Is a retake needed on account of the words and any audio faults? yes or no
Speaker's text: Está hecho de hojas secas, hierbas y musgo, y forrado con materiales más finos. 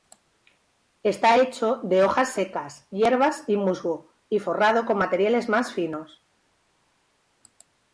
no